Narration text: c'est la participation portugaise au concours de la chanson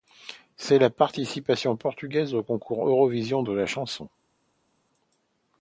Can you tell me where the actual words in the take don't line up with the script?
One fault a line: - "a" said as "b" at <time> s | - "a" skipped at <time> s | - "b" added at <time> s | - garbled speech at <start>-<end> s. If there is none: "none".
- "eurovision" added at 2.9 s